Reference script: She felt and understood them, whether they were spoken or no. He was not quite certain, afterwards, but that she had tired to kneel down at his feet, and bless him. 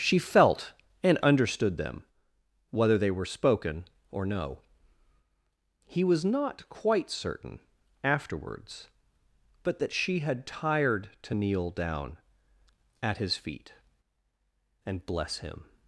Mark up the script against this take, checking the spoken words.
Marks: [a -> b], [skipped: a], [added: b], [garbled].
She felt and understood them, whether they were spoken or no. He was not quite certain, afterwards, but that she had tired to kneel down at his feet, and bless him.